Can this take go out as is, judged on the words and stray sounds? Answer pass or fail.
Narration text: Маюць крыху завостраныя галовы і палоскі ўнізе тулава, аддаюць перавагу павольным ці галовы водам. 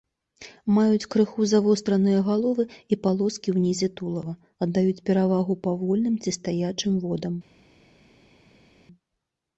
fail